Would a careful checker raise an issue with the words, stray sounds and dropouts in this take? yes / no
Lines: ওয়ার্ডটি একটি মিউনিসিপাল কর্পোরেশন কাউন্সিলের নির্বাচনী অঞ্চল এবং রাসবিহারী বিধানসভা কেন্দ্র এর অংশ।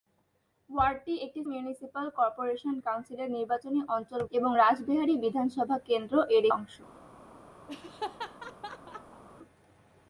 yes